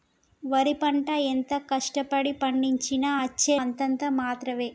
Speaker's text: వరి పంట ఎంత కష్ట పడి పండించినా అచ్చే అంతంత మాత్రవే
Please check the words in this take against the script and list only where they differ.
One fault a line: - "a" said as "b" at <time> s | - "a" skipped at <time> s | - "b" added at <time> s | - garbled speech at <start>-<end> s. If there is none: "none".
none